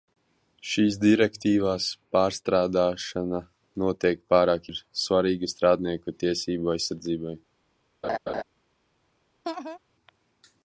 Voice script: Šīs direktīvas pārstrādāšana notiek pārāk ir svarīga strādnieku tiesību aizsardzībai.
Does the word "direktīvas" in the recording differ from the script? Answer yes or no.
no